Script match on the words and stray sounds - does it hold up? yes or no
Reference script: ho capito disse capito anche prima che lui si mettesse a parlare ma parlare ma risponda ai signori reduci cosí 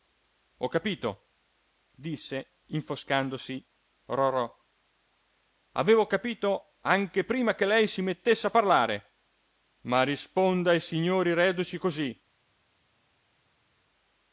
no